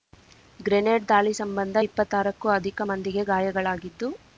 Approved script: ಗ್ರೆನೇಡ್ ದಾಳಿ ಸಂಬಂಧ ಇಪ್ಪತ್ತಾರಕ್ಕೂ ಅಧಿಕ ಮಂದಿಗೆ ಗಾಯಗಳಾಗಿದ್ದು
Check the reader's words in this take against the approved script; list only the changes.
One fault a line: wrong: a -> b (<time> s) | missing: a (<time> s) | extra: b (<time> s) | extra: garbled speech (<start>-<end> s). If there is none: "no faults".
no faults